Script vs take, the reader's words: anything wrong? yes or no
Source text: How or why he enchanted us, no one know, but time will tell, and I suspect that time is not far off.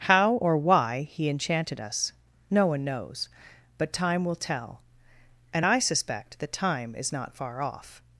yes